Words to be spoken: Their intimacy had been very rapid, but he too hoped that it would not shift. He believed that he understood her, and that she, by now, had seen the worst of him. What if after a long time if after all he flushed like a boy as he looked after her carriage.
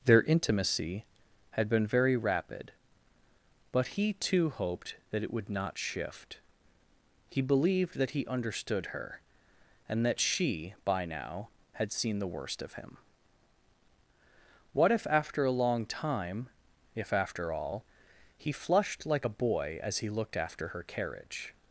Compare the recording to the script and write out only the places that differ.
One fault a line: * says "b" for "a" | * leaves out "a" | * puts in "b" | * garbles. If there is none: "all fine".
all fine